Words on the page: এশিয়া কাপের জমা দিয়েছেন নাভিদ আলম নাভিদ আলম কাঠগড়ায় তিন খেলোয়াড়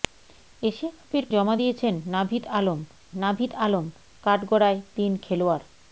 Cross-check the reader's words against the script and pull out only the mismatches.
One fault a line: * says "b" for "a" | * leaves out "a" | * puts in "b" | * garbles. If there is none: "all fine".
all fine